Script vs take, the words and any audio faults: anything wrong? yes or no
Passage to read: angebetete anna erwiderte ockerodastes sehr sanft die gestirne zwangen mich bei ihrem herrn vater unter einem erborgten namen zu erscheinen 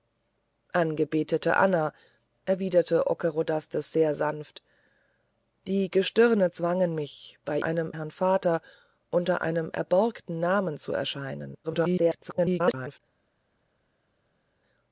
yes